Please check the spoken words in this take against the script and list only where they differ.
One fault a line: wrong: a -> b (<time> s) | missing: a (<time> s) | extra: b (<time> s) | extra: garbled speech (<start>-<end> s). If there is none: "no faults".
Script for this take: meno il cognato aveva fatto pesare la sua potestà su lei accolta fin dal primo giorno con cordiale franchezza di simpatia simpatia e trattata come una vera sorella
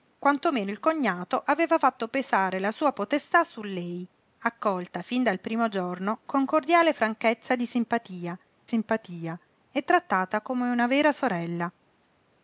no faults